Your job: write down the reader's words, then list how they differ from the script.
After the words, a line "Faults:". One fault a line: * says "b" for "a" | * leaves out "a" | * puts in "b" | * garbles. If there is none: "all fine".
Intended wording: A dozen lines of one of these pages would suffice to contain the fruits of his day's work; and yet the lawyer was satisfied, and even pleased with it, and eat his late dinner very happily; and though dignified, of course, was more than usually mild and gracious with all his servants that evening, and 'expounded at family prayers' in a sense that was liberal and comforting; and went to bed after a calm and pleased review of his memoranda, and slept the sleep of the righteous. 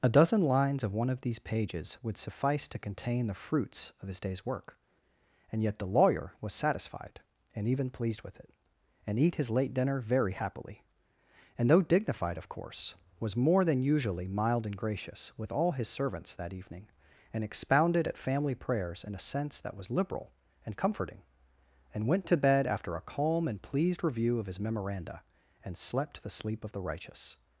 A dozen lines of one of these pages would suffice to contain the fruits of his day's work; and yet the lawyer was satisfied, and even pleased with it, and eat his late dinner very happily; and though dignified, of course, was more than usually mild and gracious with all his servants that evening, and 'expounded at family prayers' in a sense that was liberal and comforting; and went to bed after a calm and pleased review of his memoranda, and slept the sleep of the righteous.
Faults:
all fine